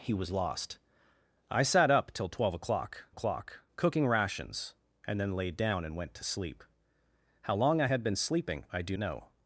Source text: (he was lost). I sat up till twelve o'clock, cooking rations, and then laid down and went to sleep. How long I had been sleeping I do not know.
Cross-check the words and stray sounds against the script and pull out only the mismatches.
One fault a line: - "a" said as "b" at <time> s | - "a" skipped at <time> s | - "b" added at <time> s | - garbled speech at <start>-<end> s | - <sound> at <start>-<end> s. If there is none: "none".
- "o'clock" added at 3.1 s
- "not" skipped at 8.9 s